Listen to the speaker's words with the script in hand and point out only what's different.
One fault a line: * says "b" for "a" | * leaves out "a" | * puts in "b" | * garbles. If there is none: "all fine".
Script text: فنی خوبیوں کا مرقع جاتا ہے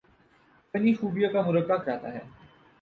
all fine